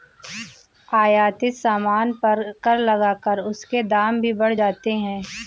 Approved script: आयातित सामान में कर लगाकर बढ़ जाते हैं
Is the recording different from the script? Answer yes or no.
yes